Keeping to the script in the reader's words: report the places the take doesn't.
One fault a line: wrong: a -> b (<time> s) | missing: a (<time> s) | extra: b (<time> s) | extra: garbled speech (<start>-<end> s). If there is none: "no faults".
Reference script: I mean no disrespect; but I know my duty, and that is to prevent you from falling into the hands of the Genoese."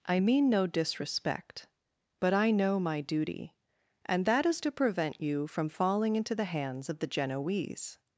no faults